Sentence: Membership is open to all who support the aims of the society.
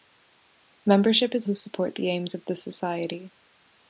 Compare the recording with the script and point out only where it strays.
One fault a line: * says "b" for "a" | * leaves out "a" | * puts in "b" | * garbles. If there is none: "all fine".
* leaves out "open to all"